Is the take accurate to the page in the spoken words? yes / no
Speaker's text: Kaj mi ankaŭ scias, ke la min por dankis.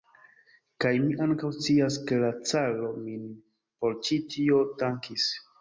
no